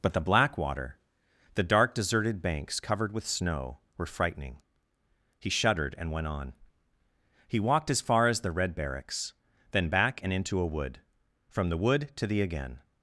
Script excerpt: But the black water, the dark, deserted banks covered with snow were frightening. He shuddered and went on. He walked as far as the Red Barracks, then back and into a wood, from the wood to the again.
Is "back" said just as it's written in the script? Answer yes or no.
yes